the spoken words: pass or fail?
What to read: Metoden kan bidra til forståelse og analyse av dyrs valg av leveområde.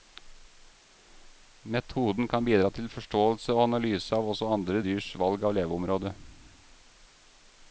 fail